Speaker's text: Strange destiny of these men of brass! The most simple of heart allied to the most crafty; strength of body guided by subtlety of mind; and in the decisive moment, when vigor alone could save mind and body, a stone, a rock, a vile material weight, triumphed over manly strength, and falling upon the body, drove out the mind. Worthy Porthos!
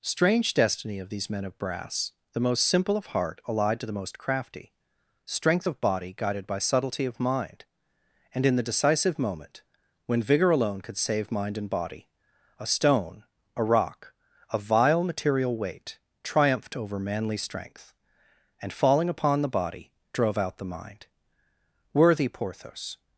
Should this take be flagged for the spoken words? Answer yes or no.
no